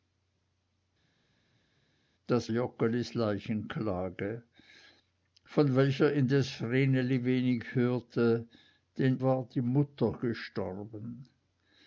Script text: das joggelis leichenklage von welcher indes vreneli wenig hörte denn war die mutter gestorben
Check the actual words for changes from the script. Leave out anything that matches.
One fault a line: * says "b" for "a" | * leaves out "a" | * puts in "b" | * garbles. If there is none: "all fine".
all fine